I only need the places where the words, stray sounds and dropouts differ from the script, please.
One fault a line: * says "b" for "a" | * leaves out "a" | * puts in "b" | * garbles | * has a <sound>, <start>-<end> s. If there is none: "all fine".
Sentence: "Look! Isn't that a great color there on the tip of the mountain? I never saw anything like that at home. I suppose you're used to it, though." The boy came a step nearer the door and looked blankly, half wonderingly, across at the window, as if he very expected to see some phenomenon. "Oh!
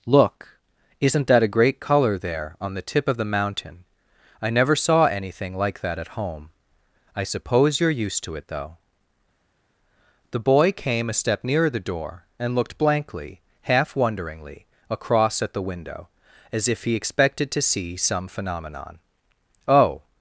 * leaves out "very"